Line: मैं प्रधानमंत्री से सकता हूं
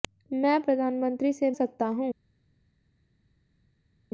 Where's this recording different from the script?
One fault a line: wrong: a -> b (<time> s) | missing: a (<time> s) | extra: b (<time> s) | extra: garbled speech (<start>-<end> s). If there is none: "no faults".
no faults